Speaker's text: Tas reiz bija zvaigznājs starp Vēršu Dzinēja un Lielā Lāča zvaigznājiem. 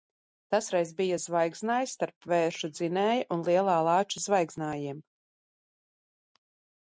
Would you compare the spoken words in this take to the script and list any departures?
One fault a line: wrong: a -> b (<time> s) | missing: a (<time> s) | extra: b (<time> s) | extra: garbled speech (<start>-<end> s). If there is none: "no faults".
no faults